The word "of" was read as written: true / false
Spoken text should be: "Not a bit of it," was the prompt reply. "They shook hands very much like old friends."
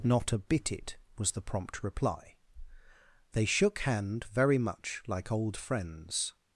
false